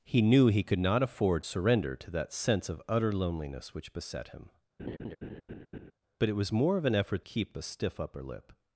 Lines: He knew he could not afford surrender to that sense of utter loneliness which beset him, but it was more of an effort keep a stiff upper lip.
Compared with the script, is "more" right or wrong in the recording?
right